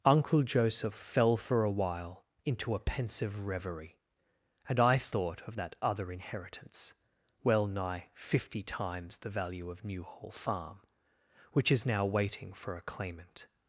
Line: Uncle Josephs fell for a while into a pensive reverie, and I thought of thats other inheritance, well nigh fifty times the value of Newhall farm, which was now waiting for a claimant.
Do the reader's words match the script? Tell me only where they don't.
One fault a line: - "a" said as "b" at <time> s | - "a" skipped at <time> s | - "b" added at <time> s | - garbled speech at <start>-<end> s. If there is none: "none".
- "Josephs" said as "Joseph" at 0.4 s
- "thats" said as "that" at 5.6 s
- "was" said as "is" at 11.7 s